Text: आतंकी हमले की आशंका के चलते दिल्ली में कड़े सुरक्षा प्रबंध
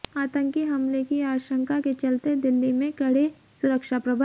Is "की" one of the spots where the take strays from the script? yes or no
no